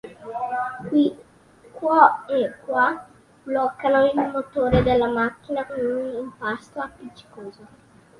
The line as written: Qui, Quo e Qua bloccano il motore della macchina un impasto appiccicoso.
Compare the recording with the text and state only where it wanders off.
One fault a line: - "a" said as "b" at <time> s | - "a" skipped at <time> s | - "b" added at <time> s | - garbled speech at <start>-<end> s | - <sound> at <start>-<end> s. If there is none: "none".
none